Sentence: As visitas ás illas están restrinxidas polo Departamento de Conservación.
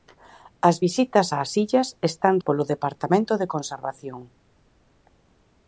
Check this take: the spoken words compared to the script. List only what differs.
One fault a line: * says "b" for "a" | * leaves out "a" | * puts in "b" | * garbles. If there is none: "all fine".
* leaves out "restrinxidas"